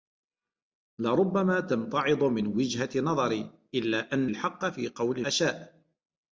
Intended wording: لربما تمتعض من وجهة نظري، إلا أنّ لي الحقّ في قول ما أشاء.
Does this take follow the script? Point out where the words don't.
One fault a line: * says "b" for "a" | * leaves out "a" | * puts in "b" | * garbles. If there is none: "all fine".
* leaves out "لي"
* leaves out "ما"